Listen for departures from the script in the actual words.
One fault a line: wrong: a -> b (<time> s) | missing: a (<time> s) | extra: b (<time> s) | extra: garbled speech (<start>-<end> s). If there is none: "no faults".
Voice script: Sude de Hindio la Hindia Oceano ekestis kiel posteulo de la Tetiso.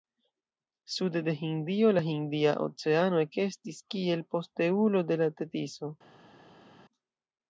no faults